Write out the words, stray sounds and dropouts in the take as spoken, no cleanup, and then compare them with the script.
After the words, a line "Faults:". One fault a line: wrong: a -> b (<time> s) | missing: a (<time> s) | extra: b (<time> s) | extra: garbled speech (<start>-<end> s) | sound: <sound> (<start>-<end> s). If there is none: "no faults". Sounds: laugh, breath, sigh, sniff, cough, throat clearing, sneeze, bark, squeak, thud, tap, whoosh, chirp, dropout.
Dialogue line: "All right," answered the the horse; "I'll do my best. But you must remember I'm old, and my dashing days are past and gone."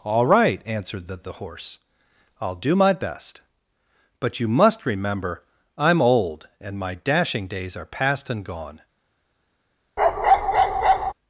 "All right," answered the the horse; "I'll do my best. But you must remember I'm old, and my dashing days are past and gone."
Faults:
sound: bark (10.0-11.1 s)